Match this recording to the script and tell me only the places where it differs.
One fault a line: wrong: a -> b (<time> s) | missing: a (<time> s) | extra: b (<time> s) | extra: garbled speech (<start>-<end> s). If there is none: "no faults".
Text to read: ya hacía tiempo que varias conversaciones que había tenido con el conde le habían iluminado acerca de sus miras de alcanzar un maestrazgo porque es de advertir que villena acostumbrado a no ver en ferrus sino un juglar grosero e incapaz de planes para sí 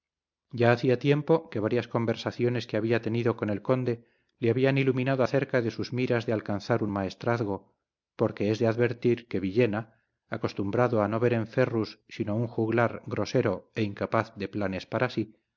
no faults